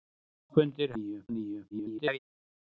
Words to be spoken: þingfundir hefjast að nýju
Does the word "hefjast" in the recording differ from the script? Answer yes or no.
yes